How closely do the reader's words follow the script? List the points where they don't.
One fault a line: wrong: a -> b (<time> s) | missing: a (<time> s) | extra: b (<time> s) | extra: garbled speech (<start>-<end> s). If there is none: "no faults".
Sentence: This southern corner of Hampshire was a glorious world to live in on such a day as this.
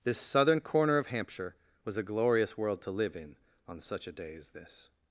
no faults